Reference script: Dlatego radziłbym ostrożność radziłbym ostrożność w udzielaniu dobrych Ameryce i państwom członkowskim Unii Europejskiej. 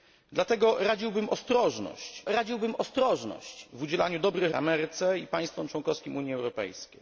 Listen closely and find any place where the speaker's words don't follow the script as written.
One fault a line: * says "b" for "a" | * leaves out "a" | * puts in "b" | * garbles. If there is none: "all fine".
all fine